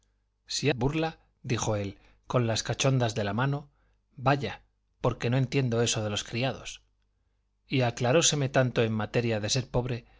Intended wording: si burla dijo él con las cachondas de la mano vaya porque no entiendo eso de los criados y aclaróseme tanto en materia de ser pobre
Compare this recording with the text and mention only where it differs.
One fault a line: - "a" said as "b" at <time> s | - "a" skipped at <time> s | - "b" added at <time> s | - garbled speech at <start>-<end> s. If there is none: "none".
none